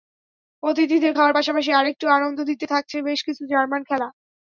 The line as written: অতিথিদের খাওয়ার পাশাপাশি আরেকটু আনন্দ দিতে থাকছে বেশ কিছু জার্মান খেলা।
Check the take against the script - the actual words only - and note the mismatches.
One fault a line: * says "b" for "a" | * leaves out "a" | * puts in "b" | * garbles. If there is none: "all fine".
all fine